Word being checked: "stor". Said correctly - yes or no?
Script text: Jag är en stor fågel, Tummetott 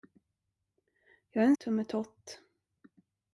no